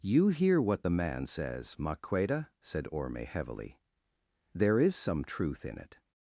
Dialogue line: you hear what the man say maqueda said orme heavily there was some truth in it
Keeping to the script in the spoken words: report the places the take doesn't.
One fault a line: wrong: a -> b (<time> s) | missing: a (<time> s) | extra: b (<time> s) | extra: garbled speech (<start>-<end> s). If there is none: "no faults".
wrong: say -> says (1.3 s)
wrong: was -> is (4.8 s)